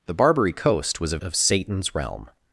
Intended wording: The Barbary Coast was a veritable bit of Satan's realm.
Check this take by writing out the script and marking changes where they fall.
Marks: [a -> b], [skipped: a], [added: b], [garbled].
The Barbary Coast was a [skipped: veritable bit] of Satan's realm.